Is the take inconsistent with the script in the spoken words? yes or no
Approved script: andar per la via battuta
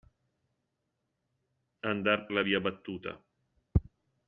yes